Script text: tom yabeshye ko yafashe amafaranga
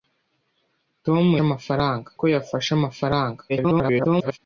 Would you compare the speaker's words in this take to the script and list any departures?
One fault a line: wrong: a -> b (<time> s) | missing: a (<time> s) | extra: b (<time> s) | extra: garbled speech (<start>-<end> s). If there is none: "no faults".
wrong: yabeshye -> amafaranga (1.5 s)
extra: garbled speech (3.5-4.4 s)